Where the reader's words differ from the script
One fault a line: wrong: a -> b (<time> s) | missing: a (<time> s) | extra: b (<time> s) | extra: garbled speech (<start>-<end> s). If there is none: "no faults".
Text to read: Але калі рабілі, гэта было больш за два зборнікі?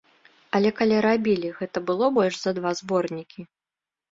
no faults